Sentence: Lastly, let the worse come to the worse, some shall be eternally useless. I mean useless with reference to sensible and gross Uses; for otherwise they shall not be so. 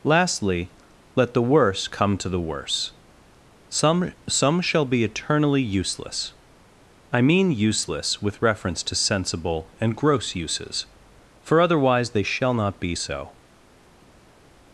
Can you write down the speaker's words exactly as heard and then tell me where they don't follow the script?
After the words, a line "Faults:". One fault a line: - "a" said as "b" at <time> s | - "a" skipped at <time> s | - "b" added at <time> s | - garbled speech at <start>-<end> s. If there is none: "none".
Lastly, let the worse come to the worse, some some shall be eternally useless. I mean useless with reference to sensible and gross Uses; for otherwise they shall not be so.
Faults:
- "some" added at 4.3 s